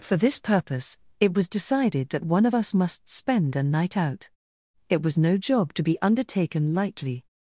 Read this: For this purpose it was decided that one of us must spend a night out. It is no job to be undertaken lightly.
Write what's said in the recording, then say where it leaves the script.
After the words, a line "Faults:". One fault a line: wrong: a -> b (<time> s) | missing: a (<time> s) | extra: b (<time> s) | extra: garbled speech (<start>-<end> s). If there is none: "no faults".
For this purpose it was decided that one of us must spend a night out. It was no job to be undertaken lightly.
Faults:
wrong: is -> was (5.0 s)